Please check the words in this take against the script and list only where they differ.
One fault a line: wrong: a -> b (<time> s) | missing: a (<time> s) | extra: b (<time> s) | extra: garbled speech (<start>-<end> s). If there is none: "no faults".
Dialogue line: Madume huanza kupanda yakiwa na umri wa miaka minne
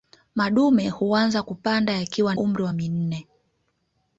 missing: na (2.4 s)
missing: miaka (2.7 s)